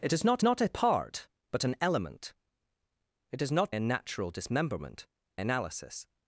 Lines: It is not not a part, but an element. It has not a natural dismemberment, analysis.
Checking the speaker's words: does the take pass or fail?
pass